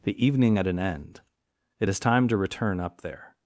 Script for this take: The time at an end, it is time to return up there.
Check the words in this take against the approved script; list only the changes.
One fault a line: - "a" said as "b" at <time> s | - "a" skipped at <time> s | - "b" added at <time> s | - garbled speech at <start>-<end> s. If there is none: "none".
- "time" said as "evening" at 0.2 s